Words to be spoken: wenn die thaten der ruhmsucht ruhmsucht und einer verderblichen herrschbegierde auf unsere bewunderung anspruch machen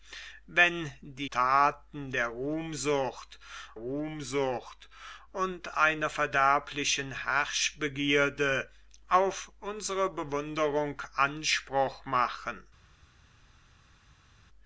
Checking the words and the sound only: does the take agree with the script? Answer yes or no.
yes